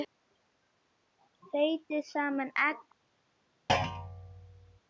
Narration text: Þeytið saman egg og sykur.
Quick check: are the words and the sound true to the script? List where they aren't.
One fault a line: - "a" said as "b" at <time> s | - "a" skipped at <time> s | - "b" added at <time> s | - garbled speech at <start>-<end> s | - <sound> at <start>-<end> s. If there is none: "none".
- thud at 3.7-4.8 s